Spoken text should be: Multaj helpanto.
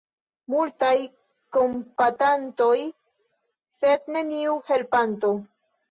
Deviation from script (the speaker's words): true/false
true